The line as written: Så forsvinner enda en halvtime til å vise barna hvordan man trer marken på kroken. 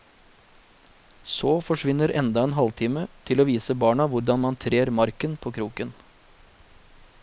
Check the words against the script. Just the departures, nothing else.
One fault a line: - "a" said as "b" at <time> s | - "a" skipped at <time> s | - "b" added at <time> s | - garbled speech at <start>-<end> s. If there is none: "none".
none